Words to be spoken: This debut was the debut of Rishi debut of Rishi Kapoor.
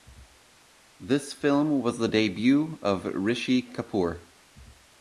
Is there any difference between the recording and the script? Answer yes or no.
yes